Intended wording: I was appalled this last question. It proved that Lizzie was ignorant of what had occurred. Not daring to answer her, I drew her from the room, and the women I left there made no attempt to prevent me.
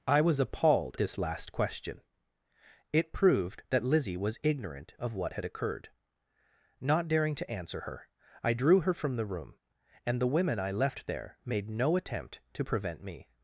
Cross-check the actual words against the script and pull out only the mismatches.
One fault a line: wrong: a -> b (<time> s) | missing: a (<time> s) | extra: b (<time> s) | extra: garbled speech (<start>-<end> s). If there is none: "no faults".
no faults